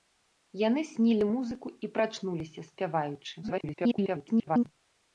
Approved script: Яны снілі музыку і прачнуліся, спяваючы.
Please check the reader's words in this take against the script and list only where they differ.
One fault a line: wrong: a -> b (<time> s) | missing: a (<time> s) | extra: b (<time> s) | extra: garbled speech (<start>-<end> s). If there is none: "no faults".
extra: garbled speech (3.4-4.7 s)